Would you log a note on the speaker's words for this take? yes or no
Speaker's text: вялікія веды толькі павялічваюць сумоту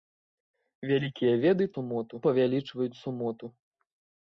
yes